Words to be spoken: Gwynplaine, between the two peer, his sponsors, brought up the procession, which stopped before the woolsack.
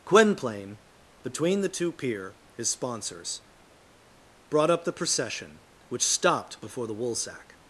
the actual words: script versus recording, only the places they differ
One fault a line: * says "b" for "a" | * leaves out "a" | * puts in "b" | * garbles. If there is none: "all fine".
all fine